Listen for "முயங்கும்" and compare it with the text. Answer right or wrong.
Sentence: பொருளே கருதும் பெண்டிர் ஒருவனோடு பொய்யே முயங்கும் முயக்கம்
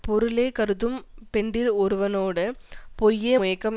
wrong